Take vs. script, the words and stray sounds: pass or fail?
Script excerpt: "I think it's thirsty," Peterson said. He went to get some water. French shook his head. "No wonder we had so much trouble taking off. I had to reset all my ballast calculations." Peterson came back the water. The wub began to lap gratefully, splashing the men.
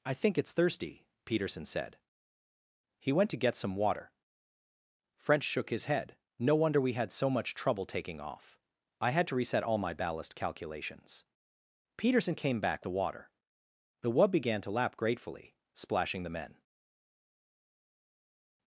pass